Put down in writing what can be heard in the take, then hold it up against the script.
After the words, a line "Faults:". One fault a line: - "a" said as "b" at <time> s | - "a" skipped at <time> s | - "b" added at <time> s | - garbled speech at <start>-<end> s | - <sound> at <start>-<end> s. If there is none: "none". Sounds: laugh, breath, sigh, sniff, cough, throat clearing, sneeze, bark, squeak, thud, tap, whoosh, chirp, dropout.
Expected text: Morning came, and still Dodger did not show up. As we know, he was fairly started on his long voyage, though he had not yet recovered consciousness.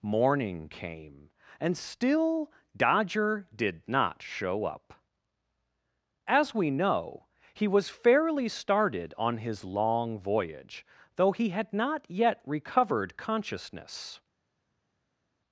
Morning came, and still Dodger did not show up. As we know, he was fairly started on his long voyage, though he had not yet recovered consciousness.
Faults:
none